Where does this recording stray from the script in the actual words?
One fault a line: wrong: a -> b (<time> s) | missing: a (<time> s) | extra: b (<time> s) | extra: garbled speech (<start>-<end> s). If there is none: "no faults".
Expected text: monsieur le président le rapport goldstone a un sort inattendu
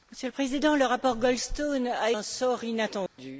no faults